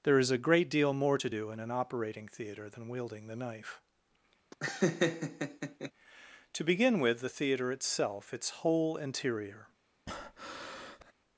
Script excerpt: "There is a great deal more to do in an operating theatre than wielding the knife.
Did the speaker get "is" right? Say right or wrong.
right